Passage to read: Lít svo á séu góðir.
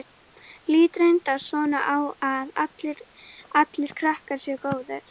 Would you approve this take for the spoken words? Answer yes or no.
no